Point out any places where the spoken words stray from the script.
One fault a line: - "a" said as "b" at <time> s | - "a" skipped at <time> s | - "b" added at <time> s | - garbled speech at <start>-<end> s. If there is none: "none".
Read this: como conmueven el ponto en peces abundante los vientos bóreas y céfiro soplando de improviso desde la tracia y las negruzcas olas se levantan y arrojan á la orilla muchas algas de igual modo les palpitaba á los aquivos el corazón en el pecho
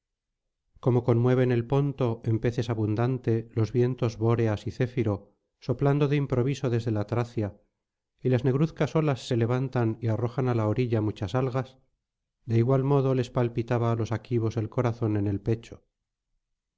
none